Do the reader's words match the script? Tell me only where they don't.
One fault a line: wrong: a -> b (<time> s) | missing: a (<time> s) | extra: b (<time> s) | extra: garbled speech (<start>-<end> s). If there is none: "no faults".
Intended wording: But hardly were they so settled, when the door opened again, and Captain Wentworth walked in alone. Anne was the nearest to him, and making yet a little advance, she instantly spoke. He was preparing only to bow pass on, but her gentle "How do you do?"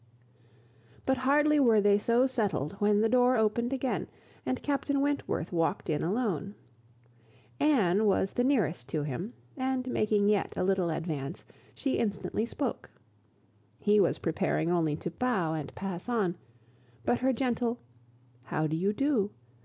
extra: and (15.5 s)